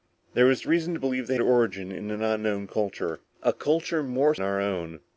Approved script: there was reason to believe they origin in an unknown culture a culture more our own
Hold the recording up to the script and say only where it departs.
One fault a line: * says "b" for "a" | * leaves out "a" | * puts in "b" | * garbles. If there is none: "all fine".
all fine